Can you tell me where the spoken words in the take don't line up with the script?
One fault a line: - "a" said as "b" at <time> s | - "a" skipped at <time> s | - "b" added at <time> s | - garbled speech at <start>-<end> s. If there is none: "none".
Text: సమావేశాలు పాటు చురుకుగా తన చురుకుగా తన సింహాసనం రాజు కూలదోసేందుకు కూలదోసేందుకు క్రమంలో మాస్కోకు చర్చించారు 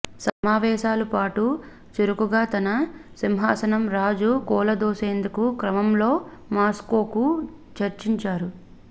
- "చురుకుగా తన" skipped at 2.7 s
- "కూలదోసేందుకు" skipped at 5.4 s